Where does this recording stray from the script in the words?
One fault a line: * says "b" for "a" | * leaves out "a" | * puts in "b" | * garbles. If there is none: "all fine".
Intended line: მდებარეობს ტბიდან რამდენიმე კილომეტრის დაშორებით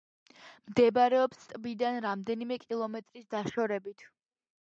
all fine